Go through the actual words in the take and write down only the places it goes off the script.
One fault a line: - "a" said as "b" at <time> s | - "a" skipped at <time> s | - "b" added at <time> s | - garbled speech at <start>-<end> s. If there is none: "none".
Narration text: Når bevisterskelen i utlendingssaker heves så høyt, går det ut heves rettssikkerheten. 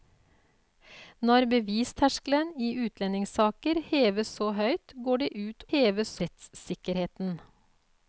none